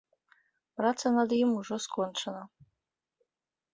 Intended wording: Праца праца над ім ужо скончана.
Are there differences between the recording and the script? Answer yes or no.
yes